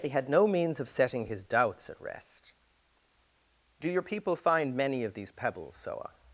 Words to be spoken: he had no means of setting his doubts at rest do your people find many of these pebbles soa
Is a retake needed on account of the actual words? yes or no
no